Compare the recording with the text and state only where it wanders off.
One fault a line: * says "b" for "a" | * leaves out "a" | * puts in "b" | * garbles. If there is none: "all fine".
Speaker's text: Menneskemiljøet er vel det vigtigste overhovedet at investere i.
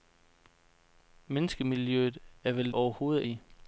* leaves out "det vigtigste"
* leaves out "investere"